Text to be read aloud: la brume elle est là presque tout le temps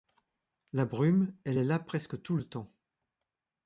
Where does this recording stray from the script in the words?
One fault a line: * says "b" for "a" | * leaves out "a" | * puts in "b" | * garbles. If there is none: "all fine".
all fine